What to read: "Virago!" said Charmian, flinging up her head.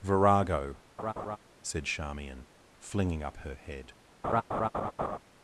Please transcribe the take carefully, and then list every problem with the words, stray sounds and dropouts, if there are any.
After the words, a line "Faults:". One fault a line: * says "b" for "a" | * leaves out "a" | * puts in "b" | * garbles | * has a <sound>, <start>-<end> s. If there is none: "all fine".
"Virago!" said Charmian, flinging up her head.
Faults:
* has a laugh, 1.0-1.4 s
* has a laugh, 4.2-5.2 s